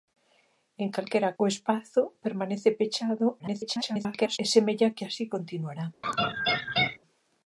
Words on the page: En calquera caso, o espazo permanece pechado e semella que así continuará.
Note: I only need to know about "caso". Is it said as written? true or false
false